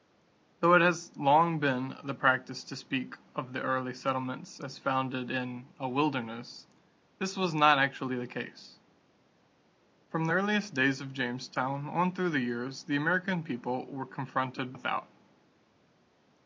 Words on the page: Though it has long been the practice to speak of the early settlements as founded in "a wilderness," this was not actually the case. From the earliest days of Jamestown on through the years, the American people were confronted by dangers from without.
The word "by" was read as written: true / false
false